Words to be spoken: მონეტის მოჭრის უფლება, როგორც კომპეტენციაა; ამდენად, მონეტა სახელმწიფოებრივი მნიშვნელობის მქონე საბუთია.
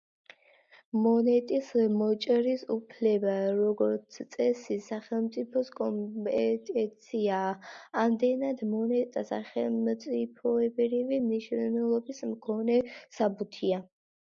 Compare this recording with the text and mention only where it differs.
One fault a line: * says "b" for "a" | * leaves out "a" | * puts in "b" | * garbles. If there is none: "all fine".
* puts in "წესი სახელმწიფოს"